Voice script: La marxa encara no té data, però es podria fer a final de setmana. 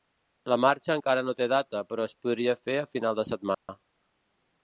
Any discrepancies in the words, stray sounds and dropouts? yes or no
yes